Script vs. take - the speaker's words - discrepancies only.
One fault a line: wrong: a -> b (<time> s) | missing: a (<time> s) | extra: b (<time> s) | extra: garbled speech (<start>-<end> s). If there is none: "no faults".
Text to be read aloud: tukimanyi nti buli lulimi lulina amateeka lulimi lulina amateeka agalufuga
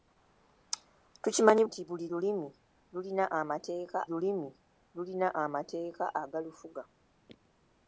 no faults